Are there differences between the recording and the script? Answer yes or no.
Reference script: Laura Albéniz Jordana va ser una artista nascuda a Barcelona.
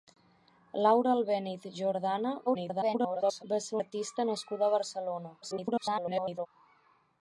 yes